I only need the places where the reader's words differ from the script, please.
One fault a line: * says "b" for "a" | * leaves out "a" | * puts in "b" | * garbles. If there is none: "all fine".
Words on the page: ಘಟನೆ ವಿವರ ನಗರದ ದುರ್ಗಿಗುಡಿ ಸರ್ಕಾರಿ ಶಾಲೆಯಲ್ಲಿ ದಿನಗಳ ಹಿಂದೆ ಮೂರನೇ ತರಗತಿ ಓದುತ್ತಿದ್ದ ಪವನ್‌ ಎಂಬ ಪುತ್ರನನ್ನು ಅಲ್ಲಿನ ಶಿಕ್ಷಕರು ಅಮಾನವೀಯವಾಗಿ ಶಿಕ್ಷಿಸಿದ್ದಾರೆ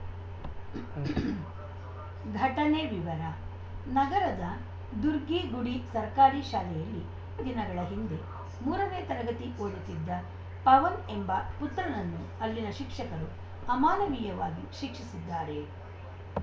all fine